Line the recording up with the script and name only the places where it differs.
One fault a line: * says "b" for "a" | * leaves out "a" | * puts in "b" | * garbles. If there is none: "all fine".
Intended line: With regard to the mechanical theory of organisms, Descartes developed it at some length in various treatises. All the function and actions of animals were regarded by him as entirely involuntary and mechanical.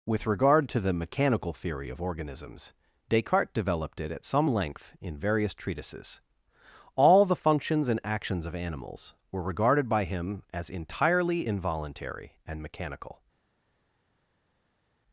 * says "functions" for "function"